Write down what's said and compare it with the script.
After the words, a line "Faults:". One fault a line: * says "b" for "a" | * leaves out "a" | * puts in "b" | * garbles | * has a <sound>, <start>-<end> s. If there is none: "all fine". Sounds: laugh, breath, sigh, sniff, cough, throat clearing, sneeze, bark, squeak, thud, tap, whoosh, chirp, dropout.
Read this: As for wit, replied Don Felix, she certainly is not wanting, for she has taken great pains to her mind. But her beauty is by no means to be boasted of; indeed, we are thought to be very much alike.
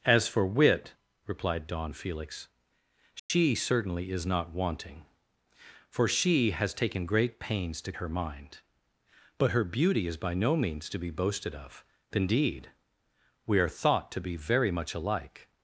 As for wit, replied Don Felix, she certainly is not wanting, for she has taken great pains to her mind. But her beauty is by no means to be boasted of; indeed, we are thought to be very much alike.
Faults:
* has a dropout, 3.2-3.3 s